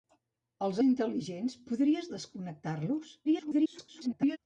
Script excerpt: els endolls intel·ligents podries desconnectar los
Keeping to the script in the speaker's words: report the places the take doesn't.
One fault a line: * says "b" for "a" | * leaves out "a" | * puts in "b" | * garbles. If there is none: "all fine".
* leaves out "endolls"
* garbles